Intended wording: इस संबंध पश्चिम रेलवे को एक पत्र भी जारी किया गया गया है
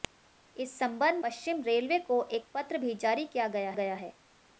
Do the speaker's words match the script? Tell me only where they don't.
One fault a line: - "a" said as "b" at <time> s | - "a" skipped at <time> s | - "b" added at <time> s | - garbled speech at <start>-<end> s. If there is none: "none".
none